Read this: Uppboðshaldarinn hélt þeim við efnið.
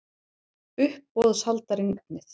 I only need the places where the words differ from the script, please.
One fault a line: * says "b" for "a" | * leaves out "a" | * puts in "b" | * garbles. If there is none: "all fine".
* leaves out "hélt þeim við"